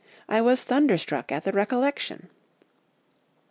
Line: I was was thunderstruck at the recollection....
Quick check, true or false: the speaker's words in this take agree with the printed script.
false